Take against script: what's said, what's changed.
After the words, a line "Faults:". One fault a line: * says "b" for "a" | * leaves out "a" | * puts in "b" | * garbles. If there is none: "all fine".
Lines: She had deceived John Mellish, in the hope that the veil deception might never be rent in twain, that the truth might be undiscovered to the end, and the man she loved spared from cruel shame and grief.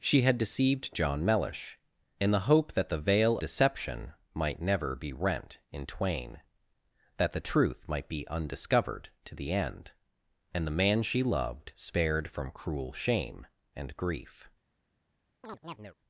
She had deceived John Mellish, in the hope that the veil deception might never be rent in twain, that the truth might be undiscovered to the end, and the man she loved spared from cruel shame and grief.
Faults:
all fine